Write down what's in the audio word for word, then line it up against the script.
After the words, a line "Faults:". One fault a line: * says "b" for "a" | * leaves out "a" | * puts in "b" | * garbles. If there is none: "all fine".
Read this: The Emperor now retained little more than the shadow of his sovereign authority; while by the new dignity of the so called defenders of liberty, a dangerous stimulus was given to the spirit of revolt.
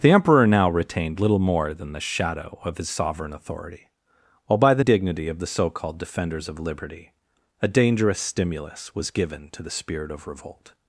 The Emperor now retained little more than the shadow of his sovereign authority; while by the dignity of the so called defenders of liberty, a dangerous stimulus was given to the spirit of revolt.
Faults:
* leaves out "new"